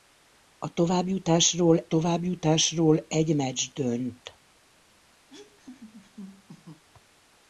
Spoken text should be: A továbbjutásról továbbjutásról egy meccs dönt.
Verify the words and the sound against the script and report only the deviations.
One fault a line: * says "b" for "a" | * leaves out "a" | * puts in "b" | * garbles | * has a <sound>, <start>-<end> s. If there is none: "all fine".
* has a laugh, 5.3-6.8 s